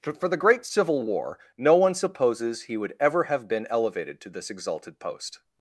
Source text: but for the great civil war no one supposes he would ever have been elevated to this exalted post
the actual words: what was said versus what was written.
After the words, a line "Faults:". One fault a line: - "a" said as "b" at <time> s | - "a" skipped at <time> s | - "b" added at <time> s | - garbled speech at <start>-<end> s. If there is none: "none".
for the great civil war no one supposes he would ever have been elevated to this exalted post
Faults:
- "but" skipped at 0.0 s